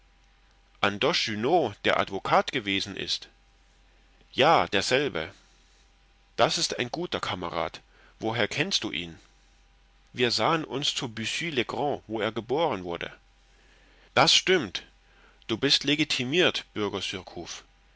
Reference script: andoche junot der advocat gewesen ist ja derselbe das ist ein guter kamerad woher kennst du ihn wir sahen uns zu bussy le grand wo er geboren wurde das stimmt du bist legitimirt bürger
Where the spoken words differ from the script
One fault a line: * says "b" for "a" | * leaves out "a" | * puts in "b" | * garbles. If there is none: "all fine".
all fine